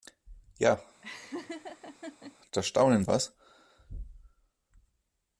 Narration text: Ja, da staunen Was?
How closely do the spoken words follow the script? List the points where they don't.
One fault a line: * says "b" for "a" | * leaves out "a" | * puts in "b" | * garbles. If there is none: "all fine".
all fine